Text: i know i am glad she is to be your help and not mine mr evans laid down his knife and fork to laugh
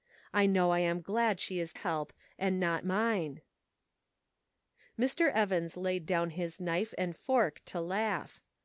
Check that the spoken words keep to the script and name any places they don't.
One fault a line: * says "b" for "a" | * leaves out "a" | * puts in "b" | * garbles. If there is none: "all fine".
* leaves out "to be your"